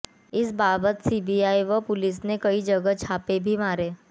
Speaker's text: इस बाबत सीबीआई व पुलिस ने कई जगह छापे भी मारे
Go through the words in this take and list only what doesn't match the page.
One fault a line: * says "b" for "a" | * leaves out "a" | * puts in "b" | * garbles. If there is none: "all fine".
all fine